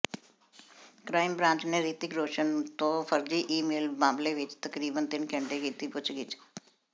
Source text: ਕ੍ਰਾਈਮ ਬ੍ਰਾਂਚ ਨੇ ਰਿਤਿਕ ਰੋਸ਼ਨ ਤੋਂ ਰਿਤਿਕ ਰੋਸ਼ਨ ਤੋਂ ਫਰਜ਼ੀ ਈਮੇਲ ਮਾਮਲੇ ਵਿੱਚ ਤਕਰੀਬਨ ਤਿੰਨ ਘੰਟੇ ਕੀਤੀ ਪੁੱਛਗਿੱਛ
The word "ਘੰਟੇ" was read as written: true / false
true